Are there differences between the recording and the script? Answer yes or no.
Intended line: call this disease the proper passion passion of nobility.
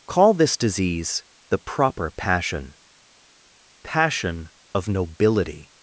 no